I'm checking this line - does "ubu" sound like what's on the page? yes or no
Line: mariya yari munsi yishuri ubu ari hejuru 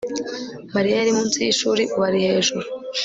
yes